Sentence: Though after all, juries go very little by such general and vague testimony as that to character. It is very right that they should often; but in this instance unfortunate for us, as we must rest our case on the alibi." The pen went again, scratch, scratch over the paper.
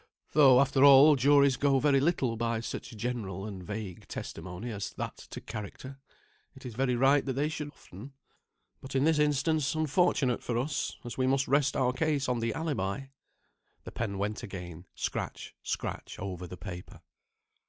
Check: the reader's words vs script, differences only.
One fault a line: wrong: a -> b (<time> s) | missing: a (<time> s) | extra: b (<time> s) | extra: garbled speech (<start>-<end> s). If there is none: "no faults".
no faults